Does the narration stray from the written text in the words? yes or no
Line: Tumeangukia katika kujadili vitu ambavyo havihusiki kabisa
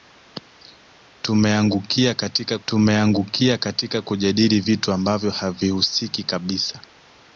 yes